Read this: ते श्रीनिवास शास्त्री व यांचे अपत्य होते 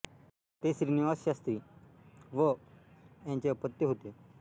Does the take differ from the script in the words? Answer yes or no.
no